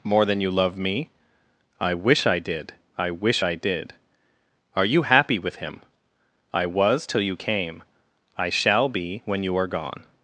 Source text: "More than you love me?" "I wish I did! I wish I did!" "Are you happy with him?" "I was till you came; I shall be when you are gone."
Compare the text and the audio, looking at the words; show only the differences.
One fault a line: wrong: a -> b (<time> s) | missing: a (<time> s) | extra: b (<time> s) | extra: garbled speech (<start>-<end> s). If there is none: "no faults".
no faults